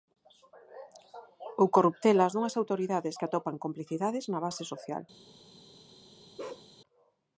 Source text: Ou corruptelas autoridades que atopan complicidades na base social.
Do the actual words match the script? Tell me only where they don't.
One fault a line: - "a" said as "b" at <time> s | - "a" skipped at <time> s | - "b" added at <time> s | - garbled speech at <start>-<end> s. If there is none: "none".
- "dunhas" added at 2.3 s